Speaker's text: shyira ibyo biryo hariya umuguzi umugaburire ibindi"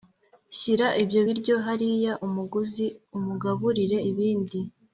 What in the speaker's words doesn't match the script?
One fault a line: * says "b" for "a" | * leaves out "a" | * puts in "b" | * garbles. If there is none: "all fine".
all fine